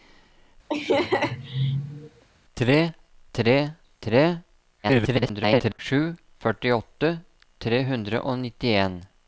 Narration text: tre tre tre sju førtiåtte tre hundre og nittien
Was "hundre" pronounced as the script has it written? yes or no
yes